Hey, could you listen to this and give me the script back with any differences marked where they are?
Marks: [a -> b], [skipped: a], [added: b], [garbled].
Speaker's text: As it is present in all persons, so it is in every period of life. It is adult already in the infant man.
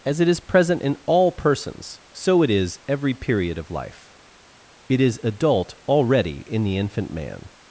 As it is present in all persons, so it is [skipped: in] every period of life. It is adult already in the infant man.